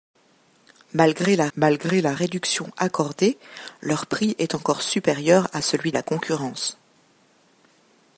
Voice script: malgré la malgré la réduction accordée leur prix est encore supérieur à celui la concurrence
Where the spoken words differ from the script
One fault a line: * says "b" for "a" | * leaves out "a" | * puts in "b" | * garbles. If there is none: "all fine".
all fine